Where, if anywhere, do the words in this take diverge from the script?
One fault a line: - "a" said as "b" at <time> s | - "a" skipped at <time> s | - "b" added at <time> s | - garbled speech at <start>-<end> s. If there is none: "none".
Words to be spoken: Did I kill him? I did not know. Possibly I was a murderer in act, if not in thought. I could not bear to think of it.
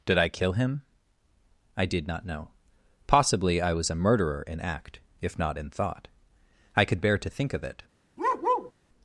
- "not" skipped at 7.0 s